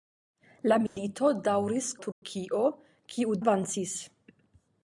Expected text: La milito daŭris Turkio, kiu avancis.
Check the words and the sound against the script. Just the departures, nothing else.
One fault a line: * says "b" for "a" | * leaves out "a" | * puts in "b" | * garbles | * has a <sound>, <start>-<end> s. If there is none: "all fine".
* has a dropout, 0.9-1.0 s
* has a dropout, 2.1-2.2 s